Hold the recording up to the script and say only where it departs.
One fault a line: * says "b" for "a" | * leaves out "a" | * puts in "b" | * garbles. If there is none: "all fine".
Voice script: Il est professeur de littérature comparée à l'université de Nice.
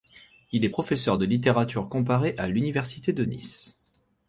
all fine